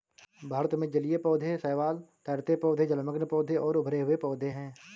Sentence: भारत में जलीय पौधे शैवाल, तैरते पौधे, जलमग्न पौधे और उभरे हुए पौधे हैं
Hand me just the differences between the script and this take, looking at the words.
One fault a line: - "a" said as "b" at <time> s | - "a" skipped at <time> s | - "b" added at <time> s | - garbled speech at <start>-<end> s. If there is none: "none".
none